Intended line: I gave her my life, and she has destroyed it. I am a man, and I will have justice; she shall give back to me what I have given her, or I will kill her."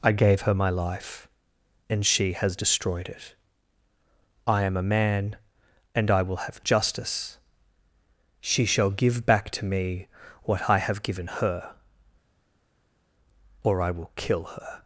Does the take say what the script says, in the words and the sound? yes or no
yes